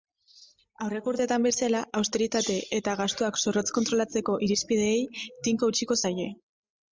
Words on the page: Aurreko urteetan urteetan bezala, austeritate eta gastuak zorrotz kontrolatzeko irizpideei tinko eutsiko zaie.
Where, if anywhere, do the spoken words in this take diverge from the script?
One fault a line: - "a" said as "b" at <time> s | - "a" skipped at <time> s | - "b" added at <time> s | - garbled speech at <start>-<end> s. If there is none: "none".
- "urteetan" skipped at 1.4 s